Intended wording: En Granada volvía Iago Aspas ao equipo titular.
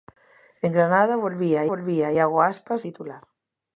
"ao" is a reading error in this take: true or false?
true